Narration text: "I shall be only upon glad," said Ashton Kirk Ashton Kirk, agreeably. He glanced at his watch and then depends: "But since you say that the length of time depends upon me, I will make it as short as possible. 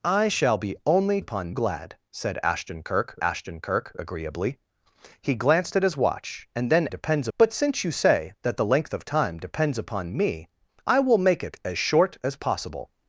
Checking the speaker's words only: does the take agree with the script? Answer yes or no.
yes